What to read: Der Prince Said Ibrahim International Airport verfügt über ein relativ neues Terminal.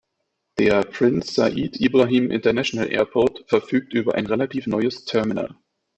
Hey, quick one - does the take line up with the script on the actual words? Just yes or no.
yes